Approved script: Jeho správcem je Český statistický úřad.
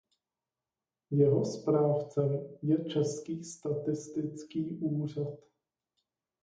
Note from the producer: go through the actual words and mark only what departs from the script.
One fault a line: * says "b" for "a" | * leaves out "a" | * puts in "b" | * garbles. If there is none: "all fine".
all fine